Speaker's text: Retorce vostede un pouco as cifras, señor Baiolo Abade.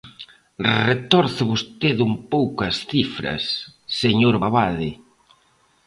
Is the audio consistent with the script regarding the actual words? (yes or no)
no